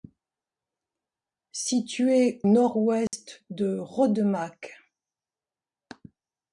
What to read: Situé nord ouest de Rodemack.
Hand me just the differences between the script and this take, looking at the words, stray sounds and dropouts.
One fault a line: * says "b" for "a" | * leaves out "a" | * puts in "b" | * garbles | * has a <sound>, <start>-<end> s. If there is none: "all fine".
* has a dropout, 3.1-3.1 s